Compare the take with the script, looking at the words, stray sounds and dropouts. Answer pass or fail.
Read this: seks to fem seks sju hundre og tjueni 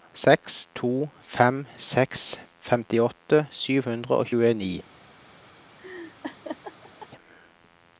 fail